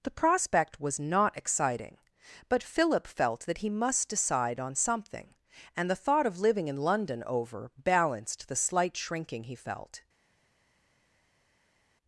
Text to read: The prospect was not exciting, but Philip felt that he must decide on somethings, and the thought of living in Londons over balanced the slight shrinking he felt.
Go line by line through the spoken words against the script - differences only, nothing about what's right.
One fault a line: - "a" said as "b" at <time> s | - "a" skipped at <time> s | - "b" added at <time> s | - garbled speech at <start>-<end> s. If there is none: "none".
- "somethings" said as "something" at 4.8 s
- "Londons" said as "London" at 6.8 s